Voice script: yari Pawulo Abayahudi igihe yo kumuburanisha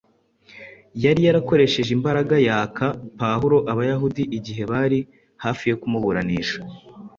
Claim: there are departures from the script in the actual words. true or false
true